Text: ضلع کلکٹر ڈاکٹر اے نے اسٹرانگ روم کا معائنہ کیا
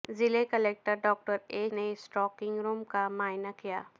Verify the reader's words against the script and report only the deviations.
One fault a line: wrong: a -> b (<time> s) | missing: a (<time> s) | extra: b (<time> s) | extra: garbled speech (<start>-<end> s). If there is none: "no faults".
no faults